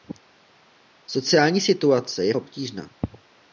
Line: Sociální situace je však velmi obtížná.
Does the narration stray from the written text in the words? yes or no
yes